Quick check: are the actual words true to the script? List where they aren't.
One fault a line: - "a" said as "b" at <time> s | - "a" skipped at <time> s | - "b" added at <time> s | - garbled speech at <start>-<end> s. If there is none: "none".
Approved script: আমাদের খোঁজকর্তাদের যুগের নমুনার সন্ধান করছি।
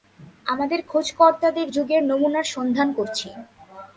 none